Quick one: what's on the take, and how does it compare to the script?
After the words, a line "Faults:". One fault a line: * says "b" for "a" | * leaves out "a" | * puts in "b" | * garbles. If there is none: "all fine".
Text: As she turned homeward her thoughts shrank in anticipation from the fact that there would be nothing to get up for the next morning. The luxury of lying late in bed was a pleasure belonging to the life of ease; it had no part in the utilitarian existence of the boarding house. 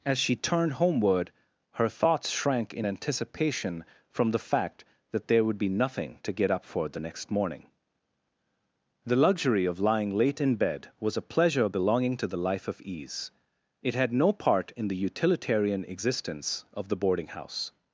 As she turned homeward her thoughts shrank in anticipation from the fact that there would be nothing to get up for the next morning. The luxury of lying late in bed was a pleasure belonging to the life of ease; it had no part in the utilitarian existence of the boarding house.
Faults:
all fine